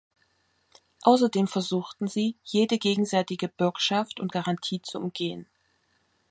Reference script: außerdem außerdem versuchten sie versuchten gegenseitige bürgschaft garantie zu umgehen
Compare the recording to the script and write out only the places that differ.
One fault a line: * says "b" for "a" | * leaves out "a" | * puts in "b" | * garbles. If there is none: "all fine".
* leaves out "außerdem"
* says "jede" for "versuchten"
* puts in "und"